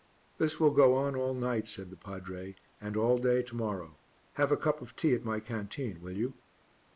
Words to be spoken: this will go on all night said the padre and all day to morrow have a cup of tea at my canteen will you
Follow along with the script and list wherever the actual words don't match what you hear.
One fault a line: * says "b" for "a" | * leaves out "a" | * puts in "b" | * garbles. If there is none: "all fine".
all fine